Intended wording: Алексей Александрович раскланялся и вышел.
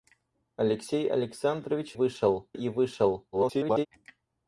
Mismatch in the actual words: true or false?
true